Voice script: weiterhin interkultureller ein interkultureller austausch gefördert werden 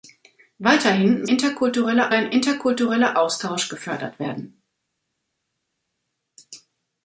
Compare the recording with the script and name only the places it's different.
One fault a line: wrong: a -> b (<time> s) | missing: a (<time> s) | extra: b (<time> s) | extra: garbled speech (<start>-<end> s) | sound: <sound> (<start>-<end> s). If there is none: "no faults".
no faults